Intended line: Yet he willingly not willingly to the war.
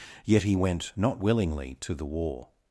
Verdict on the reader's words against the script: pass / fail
fail